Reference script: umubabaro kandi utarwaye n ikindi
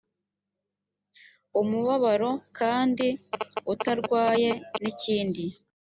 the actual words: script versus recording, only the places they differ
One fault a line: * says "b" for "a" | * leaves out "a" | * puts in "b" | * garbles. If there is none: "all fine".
all fine